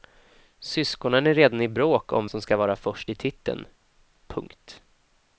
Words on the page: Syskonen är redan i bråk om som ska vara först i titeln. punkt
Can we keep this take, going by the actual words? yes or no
yes